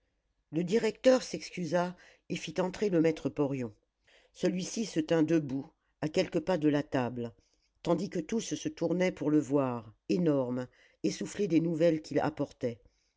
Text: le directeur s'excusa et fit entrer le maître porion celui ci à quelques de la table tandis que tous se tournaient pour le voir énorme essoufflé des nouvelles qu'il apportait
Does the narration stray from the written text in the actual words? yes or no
yes